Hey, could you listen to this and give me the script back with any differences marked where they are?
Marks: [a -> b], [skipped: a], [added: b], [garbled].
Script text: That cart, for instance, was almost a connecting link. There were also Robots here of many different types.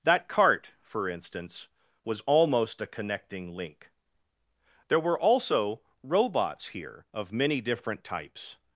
That cart, for instance, was almost a connecting link. There were also Robots here of many different types.